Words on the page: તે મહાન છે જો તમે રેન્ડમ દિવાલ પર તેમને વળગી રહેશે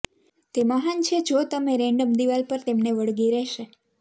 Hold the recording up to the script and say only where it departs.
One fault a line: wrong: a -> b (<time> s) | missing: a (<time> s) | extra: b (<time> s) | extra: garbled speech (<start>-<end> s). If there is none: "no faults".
no faults